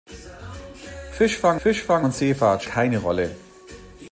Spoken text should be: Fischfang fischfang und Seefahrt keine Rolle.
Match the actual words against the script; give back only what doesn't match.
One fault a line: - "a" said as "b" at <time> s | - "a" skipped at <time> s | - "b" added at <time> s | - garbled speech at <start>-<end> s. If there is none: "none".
none